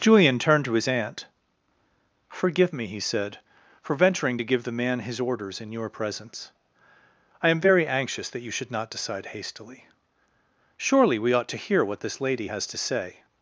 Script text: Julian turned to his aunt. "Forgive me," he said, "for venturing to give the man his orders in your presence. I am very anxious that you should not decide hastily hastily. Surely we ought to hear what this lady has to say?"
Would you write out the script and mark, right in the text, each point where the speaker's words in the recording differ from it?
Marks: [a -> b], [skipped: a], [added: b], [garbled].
Julian turned to his aunt. "Forgive me," he said, "for venturing to give the man his orders in your presence. I am very anxious that you should not decide hastily [skipped: hastily.] Surely we ought to hear what this lady has to say?"